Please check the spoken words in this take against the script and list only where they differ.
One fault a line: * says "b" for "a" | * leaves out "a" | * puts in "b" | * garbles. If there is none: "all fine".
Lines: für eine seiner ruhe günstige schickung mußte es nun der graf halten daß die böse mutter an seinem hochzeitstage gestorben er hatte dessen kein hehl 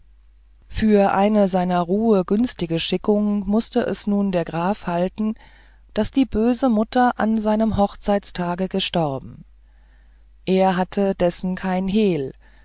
all fine